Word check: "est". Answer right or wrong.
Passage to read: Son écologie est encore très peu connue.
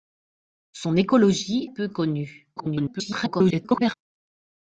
wrong